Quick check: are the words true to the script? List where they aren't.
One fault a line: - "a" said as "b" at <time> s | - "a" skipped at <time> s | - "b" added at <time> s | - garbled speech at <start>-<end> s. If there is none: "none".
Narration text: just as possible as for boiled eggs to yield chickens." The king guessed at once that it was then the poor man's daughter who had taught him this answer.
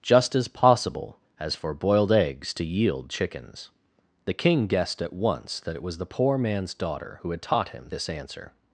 - "then" skipped at 6.0 s